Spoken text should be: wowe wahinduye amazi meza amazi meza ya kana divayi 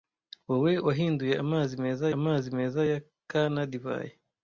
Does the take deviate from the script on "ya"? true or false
false